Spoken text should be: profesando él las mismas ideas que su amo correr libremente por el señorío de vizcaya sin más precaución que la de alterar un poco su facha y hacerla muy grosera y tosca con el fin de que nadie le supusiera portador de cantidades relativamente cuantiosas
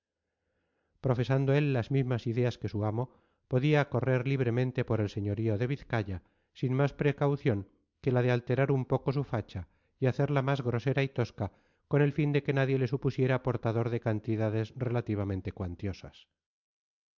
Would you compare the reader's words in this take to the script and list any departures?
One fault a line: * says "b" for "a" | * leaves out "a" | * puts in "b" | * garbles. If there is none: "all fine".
* puts in "podía"
* says "más" for "muy"